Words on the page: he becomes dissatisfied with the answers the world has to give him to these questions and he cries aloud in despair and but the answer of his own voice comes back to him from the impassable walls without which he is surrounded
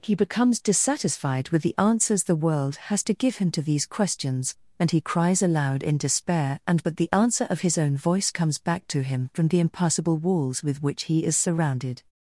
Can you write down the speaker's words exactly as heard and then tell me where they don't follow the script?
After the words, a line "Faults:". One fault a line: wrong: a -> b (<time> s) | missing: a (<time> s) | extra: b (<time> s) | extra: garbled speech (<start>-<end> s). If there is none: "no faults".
he becomes dissatisfied with the answers the world has to give him to these questions and he cries aloud in despair and but the answer of his own voice comes back to him from the impassable walls with which he is surrounded
Faults:
wrong: without -> with (10.6 s)